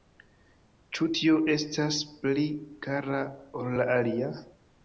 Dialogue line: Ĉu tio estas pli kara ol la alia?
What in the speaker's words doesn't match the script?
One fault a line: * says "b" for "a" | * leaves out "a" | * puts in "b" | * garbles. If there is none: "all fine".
all fine